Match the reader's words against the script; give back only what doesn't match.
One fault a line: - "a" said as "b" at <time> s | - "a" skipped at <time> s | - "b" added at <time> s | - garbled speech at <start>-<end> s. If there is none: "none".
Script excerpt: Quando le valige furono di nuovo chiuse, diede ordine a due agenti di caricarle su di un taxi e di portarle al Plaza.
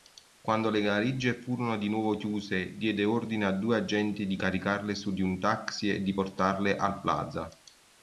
none